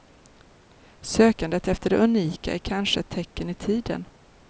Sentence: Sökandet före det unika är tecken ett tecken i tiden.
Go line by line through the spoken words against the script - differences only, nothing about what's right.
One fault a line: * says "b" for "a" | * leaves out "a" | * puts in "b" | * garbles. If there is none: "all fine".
* says "efter" for "före"
* says "kanske" for "tecken"